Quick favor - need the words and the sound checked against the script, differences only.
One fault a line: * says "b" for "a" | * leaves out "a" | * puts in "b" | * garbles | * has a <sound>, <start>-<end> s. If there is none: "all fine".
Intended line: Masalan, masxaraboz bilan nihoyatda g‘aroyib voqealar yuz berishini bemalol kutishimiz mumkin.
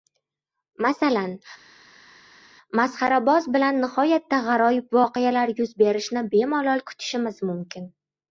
all fine